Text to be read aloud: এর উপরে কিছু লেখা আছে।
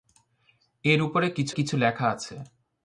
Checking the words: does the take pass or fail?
fail